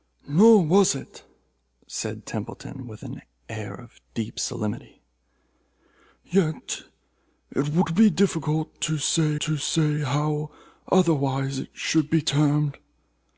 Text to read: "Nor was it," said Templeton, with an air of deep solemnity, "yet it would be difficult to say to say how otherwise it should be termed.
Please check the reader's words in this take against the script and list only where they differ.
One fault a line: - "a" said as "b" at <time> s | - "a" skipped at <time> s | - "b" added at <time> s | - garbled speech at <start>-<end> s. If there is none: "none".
none